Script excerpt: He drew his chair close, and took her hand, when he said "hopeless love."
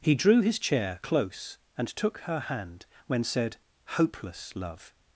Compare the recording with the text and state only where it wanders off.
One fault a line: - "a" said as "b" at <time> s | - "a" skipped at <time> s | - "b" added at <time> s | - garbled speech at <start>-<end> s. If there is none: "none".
- "he" skipped at 3.2 s